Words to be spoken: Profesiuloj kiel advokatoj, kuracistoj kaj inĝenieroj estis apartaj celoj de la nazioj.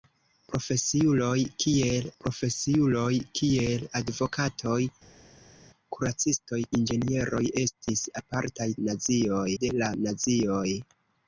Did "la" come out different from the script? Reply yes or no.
no